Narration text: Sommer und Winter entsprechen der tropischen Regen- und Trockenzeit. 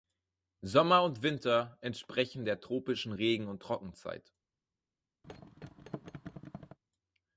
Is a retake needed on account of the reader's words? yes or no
no